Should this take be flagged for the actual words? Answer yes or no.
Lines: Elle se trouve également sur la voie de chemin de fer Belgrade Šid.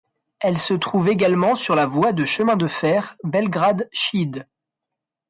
no